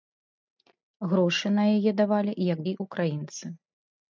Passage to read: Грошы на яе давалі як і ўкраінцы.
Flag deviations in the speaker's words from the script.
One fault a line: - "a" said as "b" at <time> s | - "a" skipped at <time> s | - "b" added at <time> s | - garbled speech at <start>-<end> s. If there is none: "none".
none